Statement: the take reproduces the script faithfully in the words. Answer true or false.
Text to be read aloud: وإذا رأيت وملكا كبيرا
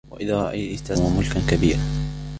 true